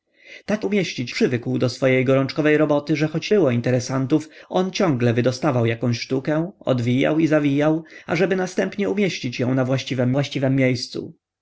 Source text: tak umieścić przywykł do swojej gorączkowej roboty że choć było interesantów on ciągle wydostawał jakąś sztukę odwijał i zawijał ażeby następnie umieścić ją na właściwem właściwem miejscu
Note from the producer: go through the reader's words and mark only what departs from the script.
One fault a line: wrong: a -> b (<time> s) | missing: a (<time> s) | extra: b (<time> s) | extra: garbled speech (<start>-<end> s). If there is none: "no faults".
no faults